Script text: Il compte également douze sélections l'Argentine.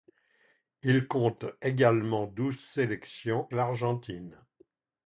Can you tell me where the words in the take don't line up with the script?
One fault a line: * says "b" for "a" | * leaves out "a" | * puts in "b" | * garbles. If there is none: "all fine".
all fine